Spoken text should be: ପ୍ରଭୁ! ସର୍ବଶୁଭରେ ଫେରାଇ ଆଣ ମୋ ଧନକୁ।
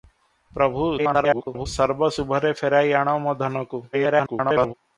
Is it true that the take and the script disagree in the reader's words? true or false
true